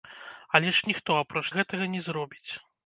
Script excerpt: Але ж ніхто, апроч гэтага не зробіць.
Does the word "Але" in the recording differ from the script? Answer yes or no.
no